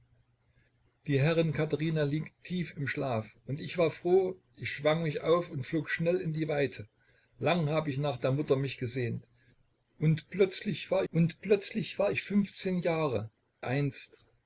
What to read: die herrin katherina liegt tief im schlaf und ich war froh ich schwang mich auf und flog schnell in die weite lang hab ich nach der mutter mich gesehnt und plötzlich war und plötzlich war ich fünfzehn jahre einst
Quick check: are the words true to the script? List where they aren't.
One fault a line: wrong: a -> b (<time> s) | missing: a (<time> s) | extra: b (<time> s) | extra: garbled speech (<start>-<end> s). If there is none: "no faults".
no faults